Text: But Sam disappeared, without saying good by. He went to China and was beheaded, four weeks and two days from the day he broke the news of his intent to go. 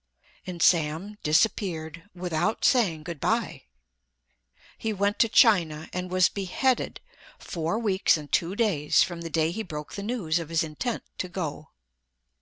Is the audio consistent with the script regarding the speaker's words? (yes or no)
no